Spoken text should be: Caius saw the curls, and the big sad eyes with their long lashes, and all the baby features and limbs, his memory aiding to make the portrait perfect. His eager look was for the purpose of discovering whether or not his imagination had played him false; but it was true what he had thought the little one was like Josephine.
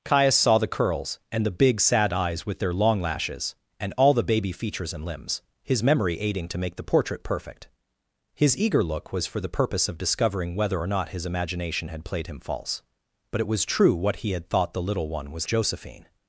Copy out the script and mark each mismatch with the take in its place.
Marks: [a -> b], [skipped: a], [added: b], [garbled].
Caius saw the curls, and the big sad eyes with their long lashes, and all the baby features and limbs, his memory aiding to make the portrait perfect. His eager look was for the purpose of discovering whether or not his imagination had played him false; but it was true what he had thought the little one was [skipped: like] Josephine.